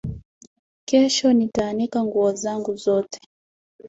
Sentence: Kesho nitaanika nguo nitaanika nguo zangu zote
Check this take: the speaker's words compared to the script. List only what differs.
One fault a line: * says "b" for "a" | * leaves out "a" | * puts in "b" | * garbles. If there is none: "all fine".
* leaves out "nitaanika nguo"